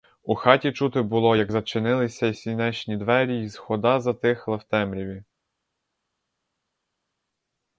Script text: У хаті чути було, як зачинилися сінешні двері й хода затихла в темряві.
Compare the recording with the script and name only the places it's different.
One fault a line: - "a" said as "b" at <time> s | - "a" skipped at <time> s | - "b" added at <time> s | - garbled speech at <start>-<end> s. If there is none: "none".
none